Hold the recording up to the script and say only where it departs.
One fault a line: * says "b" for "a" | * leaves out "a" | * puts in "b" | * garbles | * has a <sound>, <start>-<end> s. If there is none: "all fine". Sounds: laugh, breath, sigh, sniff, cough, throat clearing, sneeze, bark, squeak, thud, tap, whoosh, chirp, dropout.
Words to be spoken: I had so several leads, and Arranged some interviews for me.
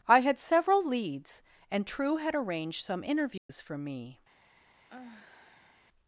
* leaves out "so"
* puts in "True had"
* has a dropout, 3.4-3.5 s
* has a sigh, 4.9-5.8 s